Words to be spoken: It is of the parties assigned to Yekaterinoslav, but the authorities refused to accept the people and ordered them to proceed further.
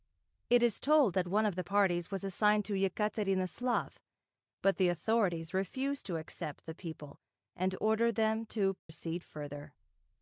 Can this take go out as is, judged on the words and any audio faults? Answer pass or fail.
fail